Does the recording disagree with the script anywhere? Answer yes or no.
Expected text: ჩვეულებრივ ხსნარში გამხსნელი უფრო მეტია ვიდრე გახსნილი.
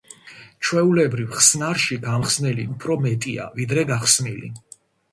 no